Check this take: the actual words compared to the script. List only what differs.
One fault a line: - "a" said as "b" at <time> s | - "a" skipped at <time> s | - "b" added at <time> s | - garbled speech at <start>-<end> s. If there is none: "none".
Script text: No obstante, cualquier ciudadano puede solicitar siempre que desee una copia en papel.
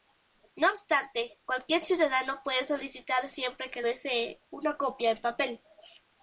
none